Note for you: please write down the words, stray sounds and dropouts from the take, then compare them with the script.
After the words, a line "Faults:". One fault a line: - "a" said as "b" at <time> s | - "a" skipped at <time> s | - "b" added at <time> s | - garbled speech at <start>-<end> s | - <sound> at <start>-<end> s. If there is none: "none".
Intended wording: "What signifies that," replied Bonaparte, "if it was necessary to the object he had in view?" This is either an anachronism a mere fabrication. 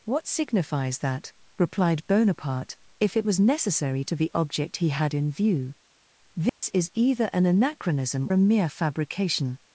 "What signifies that," replied Bonaparte, "if it was necessary to the object he had in view?" This is either an anachronism a mere fabrication.
Faults:
- dropout at 6.5-6.6 s